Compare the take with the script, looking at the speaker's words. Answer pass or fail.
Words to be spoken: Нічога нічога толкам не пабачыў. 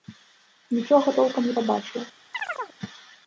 fail